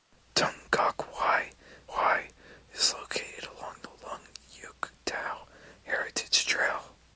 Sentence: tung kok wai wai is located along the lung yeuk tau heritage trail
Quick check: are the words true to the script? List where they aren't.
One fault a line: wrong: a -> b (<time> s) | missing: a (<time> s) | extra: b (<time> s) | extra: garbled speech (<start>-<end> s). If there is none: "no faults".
no faults